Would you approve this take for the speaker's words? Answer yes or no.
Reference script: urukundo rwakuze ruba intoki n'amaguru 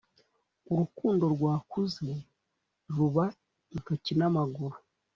yes